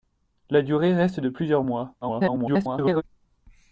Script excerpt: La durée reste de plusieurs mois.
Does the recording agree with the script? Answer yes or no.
no